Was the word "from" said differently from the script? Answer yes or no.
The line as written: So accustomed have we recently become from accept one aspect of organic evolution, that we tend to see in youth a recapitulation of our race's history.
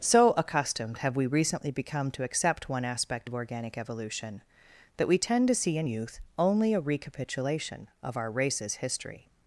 yes